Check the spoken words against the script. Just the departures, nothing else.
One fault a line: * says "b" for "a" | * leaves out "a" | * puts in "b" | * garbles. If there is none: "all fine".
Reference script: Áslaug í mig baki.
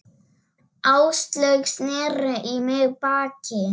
* puts in "sneri"